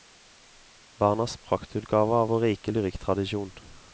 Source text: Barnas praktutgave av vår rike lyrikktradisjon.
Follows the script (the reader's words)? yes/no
yes